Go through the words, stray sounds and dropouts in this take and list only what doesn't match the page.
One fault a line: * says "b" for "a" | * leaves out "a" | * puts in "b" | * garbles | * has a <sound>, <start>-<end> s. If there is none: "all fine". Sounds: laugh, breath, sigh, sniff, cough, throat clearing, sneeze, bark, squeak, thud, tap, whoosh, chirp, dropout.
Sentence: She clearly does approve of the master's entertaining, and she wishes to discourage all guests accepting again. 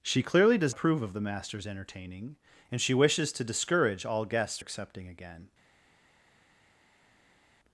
all fine